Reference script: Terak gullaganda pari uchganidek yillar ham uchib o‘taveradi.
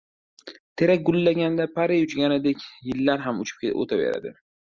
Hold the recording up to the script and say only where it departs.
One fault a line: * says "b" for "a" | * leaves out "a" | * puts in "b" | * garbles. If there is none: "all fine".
all fine